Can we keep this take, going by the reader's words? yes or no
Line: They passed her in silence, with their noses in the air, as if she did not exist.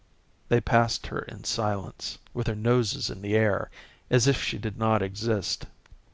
yes